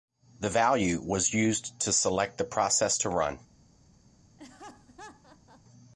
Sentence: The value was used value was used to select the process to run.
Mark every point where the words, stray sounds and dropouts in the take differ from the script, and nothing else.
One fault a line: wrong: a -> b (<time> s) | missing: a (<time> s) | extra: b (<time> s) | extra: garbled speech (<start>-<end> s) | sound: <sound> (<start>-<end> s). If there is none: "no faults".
missing: value was used (1.8 s)
sound: laugh (4.4-5.6 s)